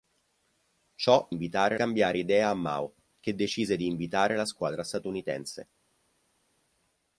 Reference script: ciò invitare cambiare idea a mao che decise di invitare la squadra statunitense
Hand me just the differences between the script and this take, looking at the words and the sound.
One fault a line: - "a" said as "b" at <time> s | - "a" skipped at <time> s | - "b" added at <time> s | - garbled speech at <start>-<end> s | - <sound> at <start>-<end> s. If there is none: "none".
none